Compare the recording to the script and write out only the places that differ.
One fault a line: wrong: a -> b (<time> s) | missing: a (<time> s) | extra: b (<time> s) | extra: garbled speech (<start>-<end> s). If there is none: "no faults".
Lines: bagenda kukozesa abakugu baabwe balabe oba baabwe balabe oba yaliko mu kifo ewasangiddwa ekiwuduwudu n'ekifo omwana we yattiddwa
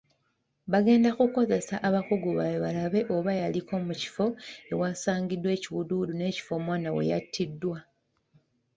missing: baabwe balabe oba (3.3 s)